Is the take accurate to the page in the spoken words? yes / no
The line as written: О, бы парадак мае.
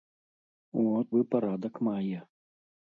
yes